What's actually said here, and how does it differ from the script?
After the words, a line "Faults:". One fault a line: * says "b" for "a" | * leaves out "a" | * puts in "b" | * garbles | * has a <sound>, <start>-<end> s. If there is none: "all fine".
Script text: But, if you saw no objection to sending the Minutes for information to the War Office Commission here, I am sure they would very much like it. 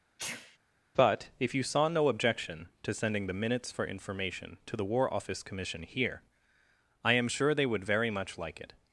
But, if you saw no objection to sending the Minutes for information to the War Office Commission here, I am sure they would very much like it.
Faults:
* has a sneeze, 0.2-0.6 s